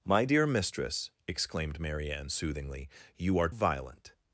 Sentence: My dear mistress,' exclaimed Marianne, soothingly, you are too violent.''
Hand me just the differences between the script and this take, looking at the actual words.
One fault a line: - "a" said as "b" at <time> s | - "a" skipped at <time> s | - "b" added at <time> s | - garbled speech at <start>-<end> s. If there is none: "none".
- "too" skipped at 3.5 s